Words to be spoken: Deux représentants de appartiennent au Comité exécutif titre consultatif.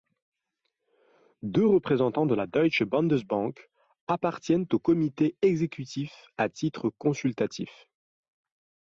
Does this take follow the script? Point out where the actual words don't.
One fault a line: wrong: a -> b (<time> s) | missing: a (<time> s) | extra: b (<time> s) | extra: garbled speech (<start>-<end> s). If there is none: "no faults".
extra: la Deutsche Bundesbank (2.3 s)
extra: à (6.4 s)